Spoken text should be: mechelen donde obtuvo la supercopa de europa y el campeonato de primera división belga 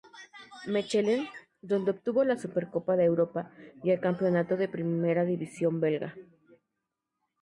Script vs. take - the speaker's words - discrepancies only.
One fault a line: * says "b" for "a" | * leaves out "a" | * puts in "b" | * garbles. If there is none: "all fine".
all fine